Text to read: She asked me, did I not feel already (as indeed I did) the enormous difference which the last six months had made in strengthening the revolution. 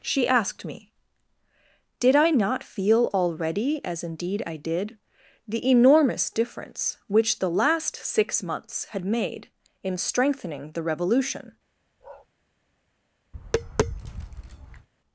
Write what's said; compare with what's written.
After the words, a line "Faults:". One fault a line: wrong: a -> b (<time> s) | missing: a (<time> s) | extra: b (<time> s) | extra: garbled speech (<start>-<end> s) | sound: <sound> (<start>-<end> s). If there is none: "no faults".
She asked me, did I not feel already (as indeed I did) the enormous difference which the last six months had made in strengthening the revolution.
Faults:
sound: bark (12.0-12.3 s)
sound: tap (13.3-14.9 s)